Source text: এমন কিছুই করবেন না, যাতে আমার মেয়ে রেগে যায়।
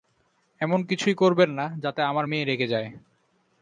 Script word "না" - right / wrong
right